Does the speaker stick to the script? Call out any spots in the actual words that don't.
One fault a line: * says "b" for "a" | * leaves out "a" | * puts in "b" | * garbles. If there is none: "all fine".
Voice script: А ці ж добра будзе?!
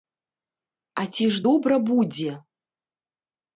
all fine